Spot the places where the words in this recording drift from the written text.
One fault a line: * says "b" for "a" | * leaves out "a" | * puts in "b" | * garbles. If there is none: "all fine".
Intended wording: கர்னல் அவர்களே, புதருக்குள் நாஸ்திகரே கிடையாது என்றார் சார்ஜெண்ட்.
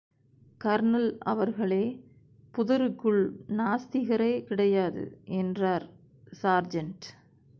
all fine